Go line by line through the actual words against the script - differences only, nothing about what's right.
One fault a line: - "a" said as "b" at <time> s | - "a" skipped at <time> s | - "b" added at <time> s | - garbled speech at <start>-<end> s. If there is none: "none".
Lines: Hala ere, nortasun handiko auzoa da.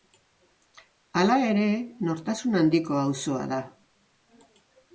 none